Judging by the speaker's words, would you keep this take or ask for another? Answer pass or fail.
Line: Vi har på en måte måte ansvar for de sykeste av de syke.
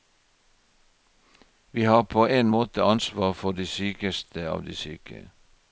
fail